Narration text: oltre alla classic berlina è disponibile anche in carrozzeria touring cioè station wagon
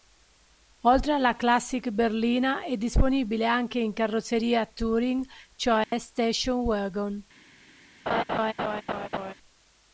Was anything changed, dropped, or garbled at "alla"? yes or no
no